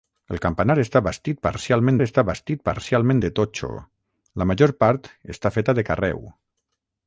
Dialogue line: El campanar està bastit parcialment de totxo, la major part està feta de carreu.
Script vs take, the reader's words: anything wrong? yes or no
yes